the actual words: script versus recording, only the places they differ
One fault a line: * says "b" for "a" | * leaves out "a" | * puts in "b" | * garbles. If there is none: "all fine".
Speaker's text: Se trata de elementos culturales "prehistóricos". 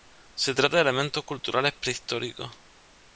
all fine